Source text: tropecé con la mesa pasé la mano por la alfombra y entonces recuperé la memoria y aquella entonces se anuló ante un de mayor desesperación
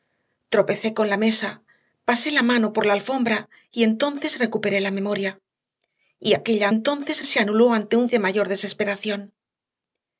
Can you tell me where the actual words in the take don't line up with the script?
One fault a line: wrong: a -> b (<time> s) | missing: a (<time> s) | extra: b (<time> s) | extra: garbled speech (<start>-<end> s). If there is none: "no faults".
no faults